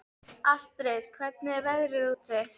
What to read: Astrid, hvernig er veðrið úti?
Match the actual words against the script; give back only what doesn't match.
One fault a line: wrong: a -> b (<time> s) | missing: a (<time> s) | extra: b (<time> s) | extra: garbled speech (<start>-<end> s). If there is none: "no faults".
no faults